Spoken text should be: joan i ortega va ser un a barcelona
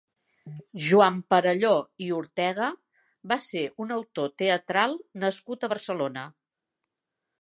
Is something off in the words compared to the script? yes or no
yes